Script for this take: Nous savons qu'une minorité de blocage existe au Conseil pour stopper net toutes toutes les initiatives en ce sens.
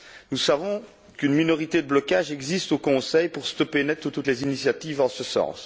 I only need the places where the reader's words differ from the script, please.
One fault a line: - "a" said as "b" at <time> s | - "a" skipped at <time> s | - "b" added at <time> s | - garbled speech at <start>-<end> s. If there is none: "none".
none